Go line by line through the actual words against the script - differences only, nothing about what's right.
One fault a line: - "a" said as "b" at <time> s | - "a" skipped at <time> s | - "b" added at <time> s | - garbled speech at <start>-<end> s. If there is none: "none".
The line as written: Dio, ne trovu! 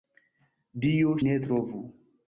none